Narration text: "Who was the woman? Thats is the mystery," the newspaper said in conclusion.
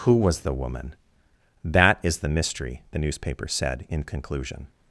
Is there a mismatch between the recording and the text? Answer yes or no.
yes